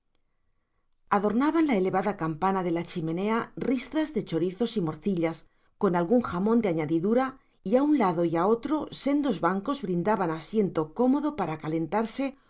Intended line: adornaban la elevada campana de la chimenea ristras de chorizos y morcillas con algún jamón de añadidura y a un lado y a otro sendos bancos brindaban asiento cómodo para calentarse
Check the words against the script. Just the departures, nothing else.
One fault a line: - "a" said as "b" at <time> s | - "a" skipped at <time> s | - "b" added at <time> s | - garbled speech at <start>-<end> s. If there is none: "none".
none